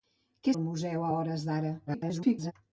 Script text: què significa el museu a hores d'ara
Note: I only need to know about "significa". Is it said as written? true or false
false